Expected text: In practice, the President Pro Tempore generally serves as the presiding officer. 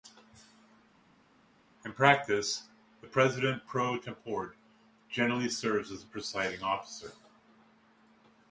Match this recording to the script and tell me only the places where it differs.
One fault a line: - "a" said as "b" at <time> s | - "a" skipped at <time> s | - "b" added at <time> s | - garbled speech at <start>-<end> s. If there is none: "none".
none